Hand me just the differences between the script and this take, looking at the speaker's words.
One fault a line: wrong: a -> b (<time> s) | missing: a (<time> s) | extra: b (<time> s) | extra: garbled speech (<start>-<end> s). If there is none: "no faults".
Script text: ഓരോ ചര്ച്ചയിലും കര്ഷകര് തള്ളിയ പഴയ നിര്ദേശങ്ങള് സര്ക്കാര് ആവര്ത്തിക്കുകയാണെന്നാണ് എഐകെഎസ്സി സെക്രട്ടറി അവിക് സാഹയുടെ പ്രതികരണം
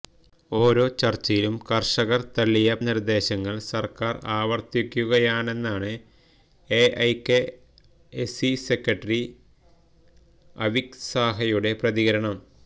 missing: പഴയ (2.7 s)